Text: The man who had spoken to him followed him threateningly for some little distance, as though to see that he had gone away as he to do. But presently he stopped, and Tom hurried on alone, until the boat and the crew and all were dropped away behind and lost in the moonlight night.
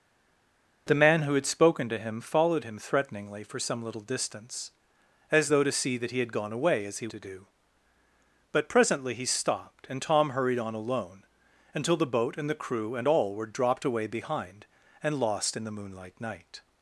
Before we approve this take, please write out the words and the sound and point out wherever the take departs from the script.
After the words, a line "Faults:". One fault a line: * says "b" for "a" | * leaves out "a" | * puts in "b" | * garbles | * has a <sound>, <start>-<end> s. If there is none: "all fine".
The man who had spoken to him followed him threateningly for some little distance, as though to see that he had gone away as he to do. But presently he stopped, and Tom hurried on alone, until the boat and the crew and all were dropped away behind and lost in the moonlight night.
Faults:
all fine